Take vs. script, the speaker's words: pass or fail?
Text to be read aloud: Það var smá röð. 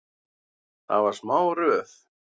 pass